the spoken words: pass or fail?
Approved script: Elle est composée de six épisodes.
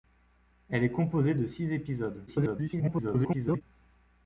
fail